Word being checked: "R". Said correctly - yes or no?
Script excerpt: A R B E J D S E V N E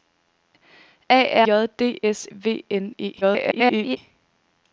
no